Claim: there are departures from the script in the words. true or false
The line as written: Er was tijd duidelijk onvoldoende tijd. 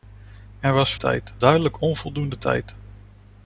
false